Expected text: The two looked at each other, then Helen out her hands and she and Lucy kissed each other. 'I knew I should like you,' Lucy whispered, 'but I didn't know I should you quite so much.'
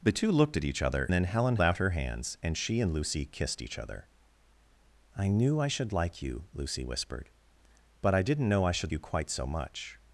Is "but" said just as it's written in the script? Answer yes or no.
yes